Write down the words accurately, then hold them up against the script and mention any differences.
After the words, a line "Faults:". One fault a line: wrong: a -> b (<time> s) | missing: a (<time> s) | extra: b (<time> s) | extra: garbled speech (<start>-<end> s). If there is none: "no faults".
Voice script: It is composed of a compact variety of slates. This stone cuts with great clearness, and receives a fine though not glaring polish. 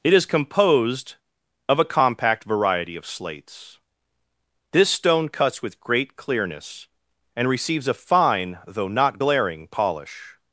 It is composed of a compact variety of slates. This stone cuts with great clearness, and receives a fine though not glaring polish.
Faults:
no faults